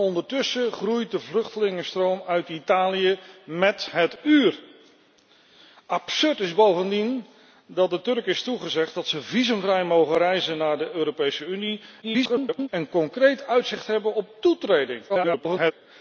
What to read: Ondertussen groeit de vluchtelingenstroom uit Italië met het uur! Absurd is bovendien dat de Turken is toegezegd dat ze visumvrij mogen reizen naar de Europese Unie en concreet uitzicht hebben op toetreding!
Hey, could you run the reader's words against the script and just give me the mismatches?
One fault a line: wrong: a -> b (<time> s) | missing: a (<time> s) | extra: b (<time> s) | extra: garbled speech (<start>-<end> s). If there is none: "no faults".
extra: garbled speech (12.0-12.7 s)
extra: garbled speech (15.1-15.7 s)